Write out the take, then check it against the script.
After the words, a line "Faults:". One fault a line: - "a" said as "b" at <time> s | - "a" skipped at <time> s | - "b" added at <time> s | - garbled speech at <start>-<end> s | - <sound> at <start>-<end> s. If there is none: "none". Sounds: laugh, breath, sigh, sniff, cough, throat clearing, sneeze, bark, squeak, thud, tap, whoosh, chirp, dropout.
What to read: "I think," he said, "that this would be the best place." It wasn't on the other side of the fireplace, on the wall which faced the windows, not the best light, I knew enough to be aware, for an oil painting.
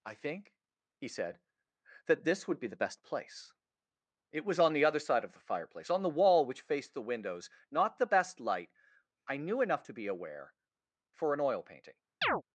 "I think," he said, "that this would be the best place." It was on the other side of the fireplace, on the wall which faced the windows, not the best light, I knew enough to be aware, for an oil painting.
Faults:
- "wasn't" said as "was" at 4.5 s
- chirp at 12.2-12.4 s